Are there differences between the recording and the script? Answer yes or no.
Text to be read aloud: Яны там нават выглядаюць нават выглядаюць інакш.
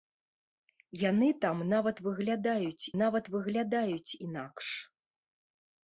no